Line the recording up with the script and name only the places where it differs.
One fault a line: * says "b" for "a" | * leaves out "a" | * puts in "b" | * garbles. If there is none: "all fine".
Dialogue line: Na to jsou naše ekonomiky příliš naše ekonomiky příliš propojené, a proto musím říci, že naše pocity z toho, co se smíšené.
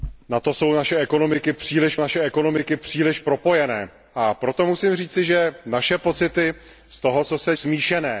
all fine